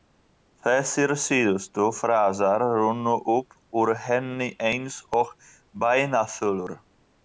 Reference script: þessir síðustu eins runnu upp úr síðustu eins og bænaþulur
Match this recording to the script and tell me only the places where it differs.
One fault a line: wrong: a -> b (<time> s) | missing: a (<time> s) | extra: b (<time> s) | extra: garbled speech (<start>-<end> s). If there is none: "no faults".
wrong: eins -> frasar (2.0 s)
wrong: síðustu -> henni (4.1 s)